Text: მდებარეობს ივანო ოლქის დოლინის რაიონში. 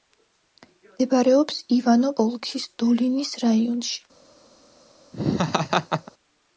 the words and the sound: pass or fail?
fail